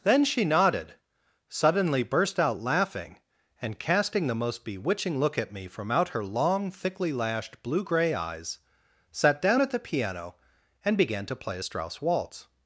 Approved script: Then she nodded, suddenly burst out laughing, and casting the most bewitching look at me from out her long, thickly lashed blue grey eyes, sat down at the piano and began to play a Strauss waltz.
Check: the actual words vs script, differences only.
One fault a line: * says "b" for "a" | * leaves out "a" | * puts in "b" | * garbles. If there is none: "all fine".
all fine